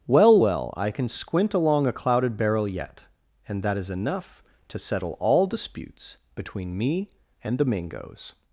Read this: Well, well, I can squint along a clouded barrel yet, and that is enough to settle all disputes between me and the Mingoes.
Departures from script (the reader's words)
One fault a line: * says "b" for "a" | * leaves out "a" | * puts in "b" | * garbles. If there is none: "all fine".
all fine